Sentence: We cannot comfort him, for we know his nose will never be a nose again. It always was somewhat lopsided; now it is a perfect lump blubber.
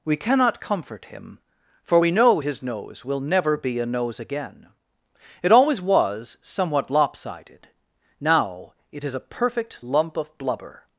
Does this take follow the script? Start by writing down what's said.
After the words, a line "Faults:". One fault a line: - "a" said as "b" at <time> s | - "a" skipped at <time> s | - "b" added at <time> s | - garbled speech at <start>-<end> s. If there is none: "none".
We cannot comfort him, for we know his nose will never be a nose again. It always was somewhat lopsided; now it is a perfect lump of blubber.
Faults:
- "of" added at 10.2 s